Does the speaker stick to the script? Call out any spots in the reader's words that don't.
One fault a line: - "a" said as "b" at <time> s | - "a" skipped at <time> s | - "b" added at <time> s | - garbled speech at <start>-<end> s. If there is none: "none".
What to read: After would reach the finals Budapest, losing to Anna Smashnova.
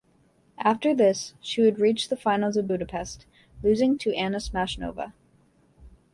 - "this she" added at 0.9 s
- "of" added at 2.6 s